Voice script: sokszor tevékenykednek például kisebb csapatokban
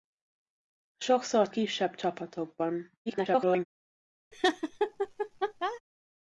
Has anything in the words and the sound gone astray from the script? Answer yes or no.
yes